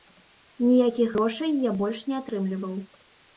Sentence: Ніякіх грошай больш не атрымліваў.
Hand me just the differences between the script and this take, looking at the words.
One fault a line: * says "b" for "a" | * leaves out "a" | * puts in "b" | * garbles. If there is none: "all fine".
* puts in "я"